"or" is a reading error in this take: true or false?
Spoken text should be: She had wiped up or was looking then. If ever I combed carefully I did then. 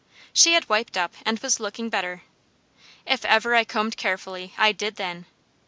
true